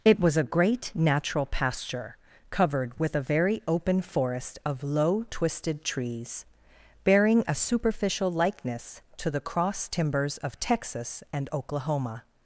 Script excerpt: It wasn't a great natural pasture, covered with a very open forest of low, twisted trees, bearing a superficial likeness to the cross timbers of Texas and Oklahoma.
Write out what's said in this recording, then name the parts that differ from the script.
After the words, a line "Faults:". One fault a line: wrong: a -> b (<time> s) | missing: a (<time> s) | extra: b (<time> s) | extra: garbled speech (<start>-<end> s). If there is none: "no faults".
It was a great natural pasture, covered with a very open forest of low, twisted trees, bearing a superficial likeness to the cross timbers of Texas and Oklahoma.
Faults:
wrong: wasn't -> was (0.2 s)